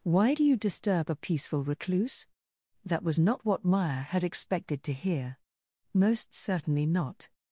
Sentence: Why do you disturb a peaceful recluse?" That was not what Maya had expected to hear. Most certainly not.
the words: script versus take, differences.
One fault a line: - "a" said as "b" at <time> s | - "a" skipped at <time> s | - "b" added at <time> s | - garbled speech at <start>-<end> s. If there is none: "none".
none